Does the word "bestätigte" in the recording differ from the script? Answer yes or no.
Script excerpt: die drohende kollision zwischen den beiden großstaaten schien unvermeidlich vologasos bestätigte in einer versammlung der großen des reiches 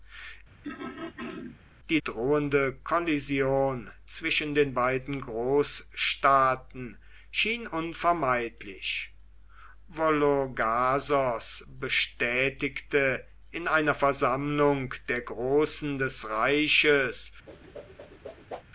no